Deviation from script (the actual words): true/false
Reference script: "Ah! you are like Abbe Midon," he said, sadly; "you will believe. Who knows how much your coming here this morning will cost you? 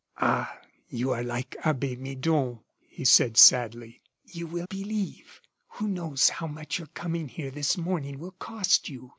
false